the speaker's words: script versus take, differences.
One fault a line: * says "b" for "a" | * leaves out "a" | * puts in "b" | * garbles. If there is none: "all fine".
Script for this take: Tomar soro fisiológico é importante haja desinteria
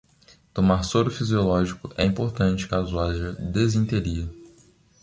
* puts in "caso"